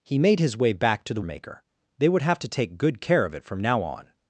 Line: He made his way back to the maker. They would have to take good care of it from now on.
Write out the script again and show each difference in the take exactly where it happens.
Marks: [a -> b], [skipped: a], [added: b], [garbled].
He made his way back to the maker. They would have to take good care of it from now on.